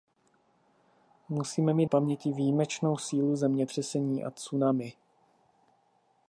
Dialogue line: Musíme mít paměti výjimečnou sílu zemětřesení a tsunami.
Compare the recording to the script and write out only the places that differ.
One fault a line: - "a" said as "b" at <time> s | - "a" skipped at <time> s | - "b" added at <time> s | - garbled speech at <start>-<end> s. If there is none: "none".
none